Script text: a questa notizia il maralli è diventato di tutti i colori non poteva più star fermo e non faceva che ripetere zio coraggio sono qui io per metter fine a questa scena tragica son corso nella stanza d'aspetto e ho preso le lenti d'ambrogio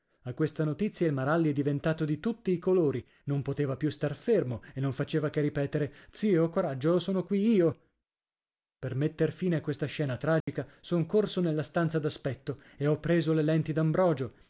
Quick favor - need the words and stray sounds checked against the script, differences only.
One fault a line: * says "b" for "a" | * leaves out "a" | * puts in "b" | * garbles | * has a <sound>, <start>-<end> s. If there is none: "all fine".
* has a dropout, 10.4-10.5 s